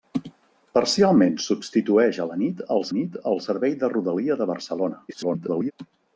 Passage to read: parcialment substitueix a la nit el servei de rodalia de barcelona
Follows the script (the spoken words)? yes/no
no